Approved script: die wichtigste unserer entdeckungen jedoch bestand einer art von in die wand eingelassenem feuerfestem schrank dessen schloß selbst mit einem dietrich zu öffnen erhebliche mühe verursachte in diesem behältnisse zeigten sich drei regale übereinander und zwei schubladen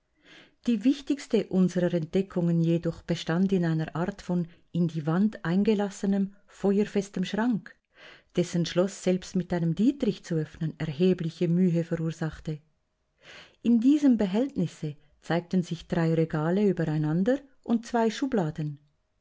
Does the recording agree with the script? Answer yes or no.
no